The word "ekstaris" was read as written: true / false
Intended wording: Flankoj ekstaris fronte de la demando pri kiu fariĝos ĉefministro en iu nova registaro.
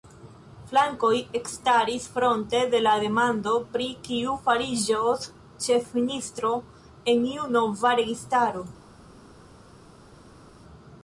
true